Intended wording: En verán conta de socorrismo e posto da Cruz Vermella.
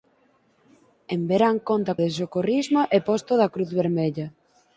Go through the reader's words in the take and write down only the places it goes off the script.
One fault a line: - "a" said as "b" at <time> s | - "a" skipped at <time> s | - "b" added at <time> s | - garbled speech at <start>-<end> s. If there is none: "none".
none